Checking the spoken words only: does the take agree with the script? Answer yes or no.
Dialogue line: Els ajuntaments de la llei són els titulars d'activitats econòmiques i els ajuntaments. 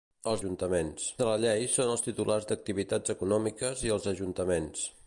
yes